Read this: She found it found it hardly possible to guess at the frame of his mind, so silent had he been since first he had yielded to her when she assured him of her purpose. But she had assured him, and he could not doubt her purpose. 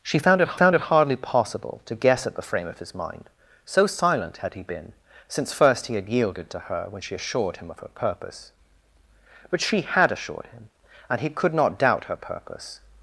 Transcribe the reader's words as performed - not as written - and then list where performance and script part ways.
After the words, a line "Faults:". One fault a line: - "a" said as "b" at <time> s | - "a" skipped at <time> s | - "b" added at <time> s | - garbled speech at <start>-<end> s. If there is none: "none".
She found it found it hardly possible to guess at the frame of his mind, so silent had he been since first he had yielded to her when she assured him of her purpose. But she had assured him, and he could not doubt her purpose.
Faults:
none